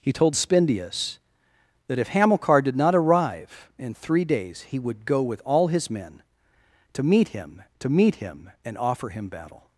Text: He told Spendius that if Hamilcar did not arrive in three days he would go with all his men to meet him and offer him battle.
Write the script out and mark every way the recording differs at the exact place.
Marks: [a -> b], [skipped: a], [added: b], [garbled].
He told Spendius that if Hamilcar did not arrive in three days he would go with all his men to meet him [added: to meet him] and offer him battle.